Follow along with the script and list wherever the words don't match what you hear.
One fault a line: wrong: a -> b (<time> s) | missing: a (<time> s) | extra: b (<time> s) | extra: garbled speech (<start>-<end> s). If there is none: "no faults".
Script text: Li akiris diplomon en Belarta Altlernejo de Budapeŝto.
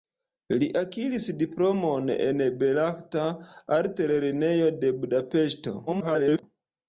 extra: garbled speech (5.9-6.4 s)